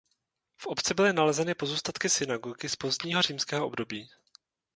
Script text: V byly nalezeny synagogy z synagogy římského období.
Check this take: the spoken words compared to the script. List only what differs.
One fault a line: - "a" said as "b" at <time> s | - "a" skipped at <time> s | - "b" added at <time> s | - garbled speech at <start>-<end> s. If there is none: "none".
- "obci" added at 0.7 s
- "pozůstatky" added at 1.6 s
- "synagogy" said as "pozdního" at 2.7 s